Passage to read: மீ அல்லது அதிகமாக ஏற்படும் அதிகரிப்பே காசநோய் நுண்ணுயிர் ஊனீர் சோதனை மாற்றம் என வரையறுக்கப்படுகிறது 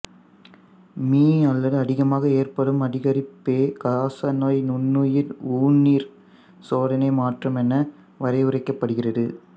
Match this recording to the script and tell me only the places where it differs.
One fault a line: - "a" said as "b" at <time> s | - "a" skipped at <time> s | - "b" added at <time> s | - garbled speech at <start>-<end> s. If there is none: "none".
none